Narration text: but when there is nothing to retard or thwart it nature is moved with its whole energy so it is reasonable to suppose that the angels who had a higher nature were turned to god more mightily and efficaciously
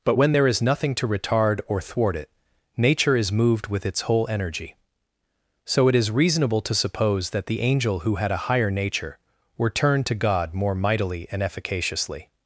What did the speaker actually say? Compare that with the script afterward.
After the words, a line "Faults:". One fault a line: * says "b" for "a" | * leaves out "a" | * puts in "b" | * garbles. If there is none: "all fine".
but when there is nothing to retard or thwart it nature is moved with its whole energy so it is reasonable to suppose that the angel who had a higher nature were turned to god more mightily and efficaciously
Faults:
* says "angel" for "angels"